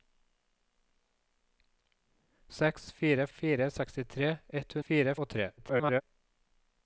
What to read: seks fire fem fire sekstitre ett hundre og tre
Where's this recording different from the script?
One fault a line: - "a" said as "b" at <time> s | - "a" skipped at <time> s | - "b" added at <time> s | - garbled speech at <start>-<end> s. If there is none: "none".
- "fem" skipped at 3.3 s
- "hundre" said as "fire" at 4.9 s
- garbled speech at 5.6-6.0 s